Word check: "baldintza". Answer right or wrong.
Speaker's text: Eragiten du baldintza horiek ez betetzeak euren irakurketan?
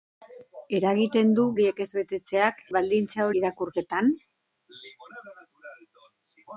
wrong